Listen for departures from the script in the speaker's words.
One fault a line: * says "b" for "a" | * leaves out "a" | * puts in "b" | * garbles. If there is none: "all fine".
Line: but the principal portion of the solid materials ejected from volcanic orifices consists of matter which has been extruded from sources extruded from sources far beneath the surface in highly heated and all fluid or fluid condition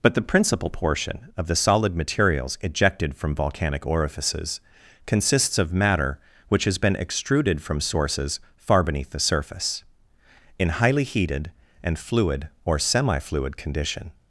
* leaves out "extruded from sources"
* leaves out "all"
* puts in "semi"